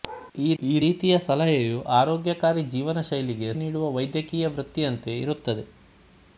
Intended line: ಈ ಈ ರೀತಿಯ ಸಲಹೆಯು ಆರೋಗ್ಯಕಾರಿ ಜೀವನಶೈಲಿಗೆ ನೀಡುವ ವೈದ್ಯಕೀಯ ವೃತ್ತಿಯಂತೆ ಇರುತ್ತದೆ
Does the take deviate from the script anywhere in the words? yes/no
no